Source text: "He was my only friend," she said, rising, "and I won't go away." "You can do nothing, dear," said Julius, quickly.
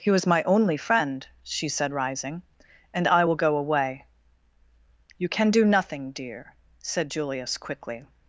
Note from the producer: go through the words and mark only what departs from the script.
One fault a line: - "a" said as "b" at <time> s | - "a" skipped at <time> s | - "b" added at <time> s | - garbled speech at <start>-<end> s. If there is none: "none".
- "won't" said as "will" at 3.2 s